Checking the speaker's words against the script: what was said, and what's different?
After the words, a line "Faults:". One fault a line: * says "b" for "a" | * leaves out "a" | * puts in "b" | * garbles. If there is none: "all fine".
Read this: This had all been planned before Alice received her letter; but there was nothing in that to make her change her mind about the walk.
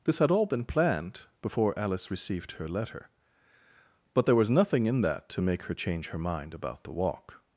This had all been planned before Alice received her letter; but there was nothing in that to make her change her mind about the walk.
Faults:
all fine